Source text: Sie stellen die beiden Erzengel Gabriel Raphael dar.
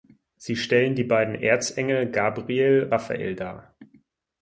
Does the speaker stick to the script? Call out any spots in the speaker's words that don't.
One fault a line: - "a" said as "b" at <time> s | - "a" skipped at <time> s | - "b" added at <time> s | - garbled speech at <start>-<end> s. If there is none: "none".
none